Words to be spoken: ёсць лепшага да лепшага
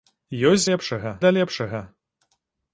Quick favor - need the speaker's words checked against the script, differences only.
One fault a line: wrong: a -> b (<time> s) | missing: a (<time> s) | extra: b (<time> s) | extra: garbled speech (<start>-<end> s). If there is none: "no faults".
no faults